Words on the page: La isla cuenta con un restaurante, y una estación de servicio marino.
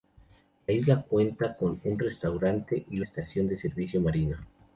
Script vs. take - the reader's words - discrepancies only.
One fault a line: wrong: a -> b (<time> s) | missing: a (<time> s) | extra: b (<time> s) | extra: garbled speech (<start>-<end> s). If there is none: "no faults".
missing: una (3.0 s)